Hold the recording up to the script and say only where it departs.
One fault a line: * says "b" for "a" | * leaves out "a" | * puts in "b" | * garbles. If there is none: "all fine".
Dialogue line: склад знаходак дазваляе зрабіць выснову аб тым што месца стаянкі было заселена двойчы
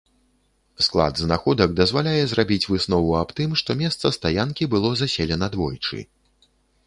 all fine